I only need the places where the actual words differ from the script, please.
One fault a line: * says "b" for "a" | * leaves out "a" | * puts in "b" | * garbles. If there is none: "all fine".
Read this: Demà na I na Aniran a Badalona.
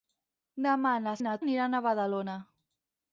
all fine